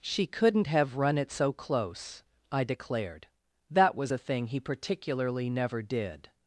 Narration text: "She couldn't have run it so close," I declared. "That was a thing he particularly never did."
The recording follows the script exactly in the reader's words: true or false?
true